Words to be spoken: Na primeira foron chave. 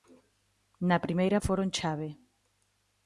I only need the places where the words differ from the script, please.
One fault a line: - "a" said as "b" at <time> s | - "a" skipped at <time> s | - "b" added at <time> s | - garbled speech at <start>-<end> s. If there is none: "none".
none